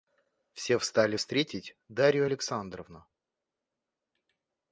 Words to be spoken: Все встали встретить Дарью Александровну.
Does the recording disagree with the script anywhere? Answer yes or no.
no